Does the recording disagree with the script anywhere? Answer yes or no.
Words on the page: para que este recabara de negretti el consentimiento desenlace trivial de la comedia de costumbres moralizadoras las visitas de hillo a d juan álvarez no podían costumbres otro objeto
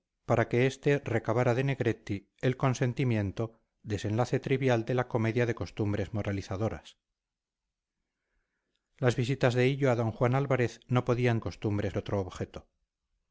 no